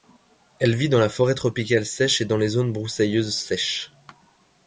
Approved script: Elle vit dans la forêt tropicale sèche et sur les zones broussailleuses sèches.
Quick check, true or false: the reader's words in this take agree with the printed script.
false